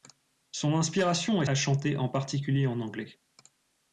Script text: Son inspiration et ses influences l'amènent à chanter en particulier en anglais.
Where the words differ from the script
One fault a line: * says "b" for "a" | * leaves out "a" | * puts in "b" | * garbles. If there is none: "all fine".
* leaves out "ses influences l'amènent"